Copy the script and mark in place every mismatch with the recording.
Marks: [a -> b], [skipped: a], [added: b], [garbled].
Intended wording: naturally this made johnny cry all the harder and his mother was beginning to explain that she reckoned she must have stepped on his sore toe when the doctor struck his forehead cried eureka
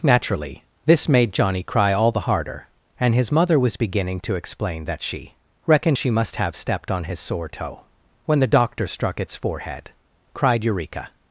naturally this made johnny cry all the harder and his mother was beginning to explain that she reckoned she must have stepped on his sore toe when the doctor struck [his -> its] forehead cried eureka